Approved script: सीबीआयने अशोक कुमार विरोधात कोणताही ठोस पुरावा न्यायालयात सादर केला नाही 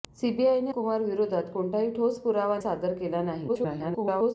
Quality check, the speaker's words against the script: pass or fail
fail